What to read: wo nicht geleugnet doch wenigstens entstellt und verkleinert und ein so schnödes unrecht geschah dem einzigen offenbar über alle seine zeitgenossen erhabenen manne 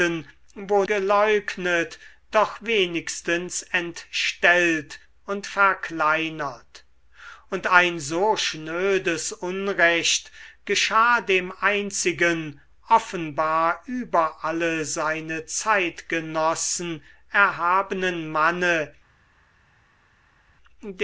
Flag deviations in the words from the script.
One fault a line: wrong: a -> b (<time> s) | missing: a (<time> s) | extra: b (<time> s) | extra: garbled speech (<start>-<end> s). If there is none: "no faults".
missing: nicht (0.8 s)